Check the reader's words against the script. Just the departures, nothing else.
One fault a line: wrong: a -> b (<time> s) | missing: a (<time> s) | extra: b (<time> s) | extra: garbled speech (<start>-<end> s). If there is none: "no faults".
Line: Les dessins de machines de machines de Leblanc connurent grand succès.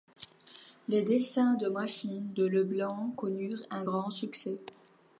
missing: machines de (2.5 s)
extra: un (3.7 s)